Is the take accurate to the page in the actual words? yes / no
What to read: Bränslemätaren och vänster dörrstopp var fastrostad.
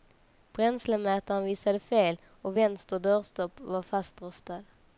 no